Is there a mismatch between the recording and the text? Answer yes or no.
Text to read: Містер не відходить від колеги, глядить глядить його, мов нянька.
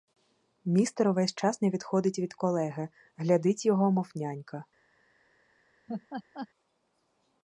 yes